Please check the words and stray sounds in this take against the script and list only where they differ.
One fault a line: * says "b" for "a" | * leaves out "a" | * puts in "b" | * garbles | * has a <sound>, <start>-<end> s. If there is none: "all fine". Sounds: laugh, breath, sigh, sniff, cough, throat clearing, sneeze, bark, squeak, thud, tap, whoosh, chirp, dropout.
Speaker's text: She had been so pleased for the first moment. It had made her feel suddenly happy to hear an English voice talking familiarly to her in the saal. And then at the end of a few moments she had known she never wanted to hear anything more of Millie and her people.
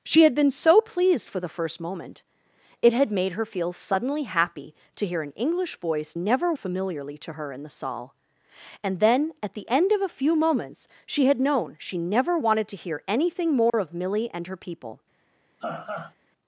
* says "never" for "talking"
* has a dropout, 13.7-13.7 s
* has a laugh, 15.6-16.1 s